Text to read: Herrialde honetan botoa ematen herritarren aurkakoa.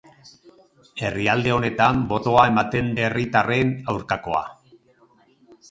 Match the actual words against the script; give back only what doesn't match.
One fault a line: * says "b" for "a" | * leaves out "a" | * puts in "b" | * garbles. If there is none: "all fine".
all fine